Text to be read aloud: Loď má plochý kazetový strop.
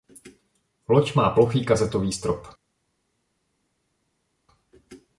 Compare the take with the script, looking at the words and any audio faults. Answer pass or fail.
pass